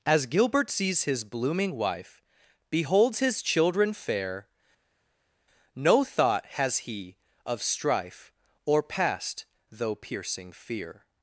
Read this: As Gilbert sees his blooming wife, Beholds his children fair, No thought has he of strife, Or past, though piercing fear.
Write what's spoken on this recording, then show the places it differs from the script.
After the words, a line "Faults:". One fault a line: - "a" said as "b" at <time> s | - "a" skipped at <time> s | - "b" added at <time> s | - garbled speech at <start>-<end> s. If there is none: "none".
As Gilbert sees his blooming wife, Beholds his children fair, No thought has he of strife, Or past, though piercing fear.
Faults:
none